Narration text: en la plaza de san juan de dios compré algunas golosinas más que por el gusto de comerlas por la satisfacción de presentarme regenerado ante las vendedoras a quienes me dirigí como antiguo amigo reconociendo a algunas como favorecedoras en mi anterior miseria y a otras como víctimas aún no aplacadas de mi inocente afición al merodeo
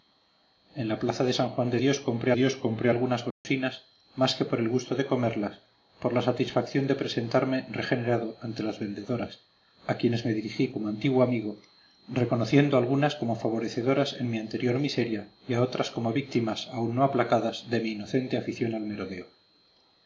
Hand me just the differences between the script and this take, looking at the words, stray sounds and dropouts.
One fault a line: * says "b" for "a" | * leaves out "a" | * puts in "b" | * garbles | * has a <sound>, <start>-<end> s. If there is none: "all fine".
* puts in "dios compré"
* has a dropout, 3.3-3.4 s